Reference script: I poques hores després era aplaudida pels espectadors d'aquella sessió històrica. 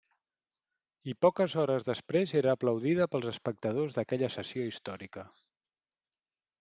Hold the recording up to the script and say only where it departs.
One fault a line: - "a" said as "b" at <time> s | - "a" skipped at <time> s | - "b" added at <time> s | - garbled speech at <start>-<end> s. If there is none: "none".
none